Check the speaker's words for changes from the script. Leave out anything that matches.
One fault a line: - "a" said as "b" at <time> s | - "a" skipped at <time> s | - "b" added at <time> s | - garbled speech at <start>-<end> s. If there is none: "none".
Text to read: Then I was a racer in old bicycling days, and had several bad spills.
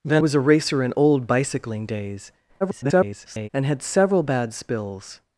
- "I" skipped at 0.2 s
- garbled speech at 2.6-3.5 s